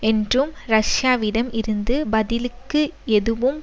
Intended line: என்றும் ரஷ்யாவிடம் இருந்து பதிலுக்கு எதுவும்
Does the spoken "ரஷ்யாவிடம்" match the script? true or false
true